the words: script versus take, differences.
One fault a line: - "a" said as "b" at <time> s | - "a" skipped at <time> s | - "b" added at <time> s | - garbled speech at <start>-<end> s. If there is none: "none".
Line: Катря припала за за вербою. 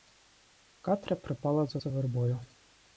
none